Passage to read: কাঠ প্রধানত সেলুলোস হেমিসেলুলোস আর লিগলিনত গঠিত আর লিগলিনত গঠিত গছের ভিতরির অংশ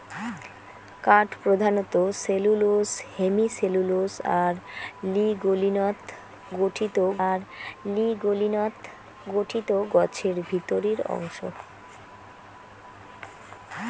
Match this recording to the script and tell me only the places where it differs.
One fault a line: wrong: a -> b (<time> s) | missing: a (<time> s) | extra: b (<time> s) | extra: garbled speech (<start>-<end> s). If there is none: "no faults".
no faults